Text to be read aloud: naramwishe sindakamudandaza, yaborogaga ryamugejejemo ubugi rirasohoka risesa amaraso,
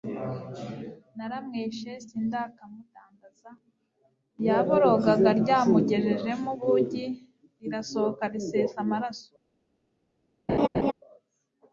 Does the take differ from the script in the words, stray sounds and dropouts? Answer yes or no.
yes